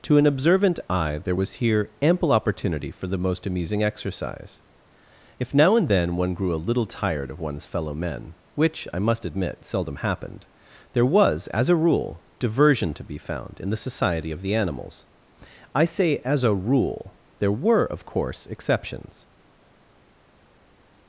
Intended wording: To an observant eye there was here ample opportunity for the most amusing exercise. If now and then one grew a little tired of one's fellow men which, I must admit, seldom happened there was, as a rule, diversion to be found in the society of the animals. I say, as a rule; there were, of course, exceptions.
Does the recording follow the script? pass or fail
pass